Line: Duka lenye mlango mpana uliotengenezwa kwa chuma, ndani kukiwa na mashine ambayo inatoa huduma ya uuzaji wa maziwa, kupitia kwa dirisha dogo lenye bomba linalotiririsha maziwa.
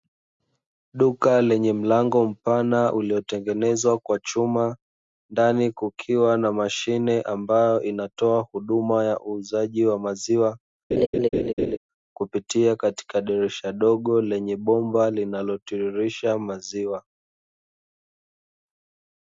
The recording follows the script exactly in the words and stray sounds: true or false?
false